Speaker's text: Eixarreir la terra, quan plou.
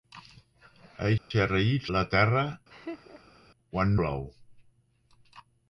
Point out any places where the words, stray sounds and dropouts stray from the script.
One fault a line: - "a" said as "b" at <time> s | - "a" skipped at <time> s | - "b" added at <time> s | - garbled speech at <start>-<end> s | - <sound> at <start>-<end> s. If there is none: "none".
- dropout at 1.2-1.3 s
- laugh at 2.7-3.4 s